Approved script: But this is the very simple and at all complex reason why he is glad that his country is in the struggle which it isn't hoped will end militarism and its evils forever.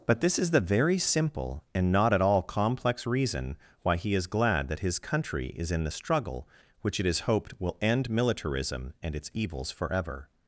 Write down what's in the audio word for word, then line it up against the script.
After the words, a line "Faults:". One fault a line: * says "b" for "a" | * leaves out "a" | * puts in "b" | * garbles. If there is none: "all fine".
But this is the very simple and not at all complex reason why he is glad that his country is in the struggle which it is hoped will end militarism and its evils forever.
Faults:
* puts in "not"
* says "is" for "isn't"